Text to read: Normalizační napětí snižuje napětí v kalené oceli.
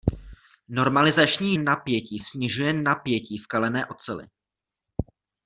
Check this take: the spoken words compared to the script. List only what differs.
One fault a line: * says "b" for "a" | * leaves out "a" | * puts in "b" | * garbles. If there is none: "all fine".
all fine